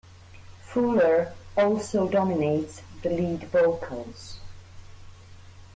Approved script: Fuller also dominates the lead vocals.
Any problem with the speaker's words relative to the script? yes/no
no